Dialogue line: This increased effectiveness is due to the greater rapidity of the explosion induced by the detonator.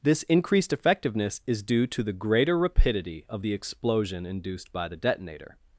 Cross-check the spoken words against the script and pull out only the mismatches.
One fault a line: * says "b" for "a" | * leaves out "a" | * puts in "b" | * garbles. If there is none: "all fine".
all fine